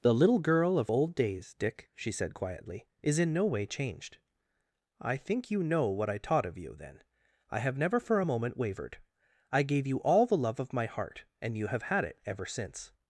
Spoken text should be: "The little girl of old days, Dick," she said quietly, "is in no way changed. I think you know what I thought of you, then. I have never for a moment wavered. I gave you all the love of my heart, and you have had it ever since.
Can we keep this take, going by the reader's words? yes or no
no